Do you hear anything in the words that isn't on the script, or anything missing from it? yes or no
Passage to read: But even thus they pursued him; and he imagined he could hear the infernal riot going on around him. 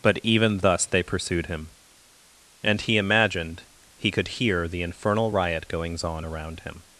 yes